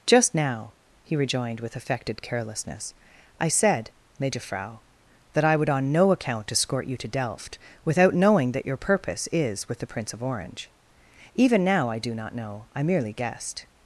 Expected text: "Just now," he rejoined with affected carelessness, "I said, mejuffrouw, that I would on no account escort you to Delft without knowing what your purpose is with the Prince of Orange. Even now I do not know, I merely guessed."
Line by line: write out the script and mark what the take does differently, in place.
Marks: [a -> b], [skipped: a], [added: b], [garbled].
"Just now," he rejoined with affected carelessness, "I said, mejuffrouw, that I would on no account escort you to Delft without knowing [what -> that] your purpose is with the Prince of Orange. Even now I do not know, I merely guessed."